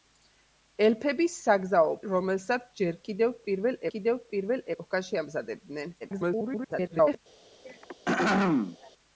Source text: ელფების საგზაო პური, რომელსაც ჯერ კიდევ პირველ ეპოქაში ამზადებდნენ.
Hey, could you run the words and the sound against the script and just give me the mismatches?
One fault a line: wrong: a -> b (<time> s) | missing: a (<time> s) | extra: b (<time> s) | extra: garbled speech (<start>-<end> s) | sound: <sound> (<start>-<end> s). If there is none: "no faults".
missing: პური (1.9 s)
extra: კიდევ პირველ (3.9 s)
extra: garbled speech (6.0-7.2 s)
sound: throat clearing (7.6-8.9 s)